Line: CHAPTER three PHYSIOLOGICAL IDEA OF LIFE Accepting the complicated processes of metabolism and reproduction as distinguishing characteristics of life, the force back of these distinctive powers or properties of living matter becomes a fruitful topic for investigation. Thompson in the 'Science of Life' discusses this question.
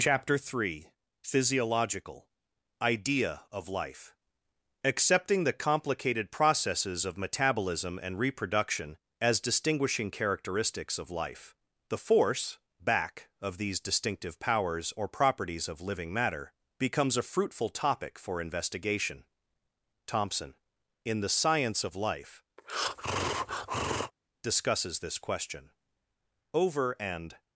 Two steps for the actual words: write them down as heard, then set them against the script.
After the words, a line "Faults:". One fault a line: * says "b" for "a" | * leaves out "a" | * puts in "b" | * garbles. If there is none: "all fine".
CHAPTER three PHYSIOLOGICAL IDEA OF LIFE Accepting the complicated processes of metabolism and reproduction as distinguishing characteristics of life, the force back of these distinctive powers or properties of living matter becomes a fruitful topic for investigation. Thompson in the 'Science of Life' discusses this question. "Over and
Faults:
* puts in "Over and"